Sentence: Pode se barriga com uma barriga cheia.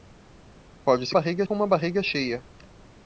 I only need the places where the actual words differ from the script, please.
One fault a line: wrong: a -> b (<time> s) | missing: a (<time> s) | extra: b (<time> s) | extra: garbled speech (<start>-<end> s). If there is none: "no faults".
no faults